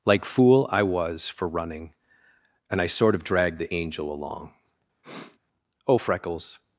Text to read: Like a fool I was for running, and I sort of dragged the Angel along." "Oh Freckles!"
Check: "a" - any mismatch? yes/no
yes